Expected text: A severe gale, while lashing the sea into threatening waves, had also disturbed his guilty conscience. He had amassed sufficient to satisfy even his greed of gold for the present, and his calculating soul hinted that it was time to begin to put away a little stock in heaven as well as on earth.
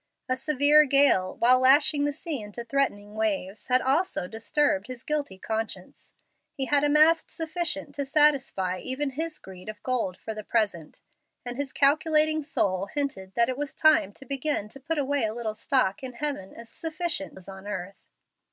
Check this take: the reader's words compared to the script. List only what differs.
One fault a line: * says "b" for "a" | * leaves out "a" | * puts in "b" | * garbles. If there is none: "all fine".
* says "sufficient" for "well"